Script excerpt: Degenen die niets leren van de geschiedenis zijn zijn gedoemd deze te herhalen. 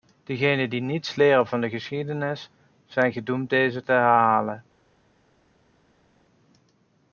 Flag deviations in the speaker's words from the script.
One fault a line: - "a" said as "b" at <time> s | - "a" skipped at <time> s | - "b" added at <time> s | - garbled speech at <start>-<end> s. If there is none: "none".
- "zijn" skipped at 3.1 s